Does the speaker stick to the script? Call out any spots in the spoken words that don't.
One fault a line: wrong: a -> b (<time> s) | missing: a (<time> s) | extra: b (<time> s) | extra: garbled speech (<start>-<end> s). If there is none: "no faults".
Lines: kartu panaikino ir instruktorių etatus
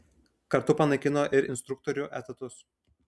no faults